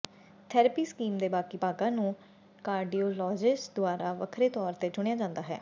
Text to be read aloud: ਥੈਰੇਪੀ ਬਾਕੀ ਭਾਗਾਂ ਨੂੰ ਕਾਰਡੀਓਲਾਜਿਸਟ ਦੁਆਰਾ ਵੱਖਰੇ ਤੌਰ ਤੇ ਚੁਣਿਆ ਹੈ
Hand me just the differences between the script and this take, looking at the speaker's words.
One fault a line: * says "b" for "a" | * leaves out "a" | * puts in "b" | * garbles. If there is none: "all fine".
* puts in "ਸਕੀਮ ਦੇ"
* puts in "ਜਾਂਦਾ"